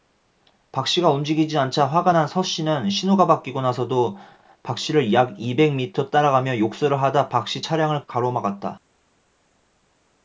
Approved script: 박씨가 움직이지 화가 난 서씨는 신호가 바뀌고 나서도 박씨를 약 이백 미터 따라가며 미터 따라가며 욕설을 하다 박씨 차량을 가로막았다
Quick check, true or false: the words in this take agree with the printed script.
false